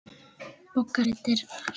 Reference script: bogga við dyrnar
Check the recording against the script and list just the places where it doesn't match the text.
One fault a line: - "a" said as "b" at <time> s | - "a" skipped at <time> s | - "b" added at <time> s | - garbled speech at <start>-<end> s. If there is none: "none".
none